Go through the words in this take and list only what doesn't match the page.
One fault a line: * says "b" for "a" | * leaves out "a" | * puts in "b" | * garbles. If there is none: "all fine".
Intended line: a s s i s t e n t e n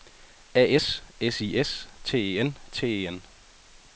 all fine